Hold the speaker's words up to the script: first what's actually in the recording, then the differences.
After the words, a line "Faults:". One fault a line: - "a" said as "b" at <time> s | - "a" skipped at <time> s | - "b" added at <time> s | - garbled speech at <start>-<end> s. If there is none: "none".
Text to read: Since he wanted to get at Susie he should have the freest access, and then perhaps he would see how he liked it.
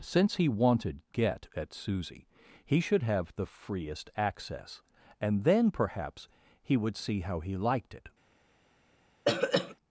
Since he wanted get at Susie he should have the freest access, and then perhaps he would see how he liked it.
Faults:
- "to" skipped at 1.0 s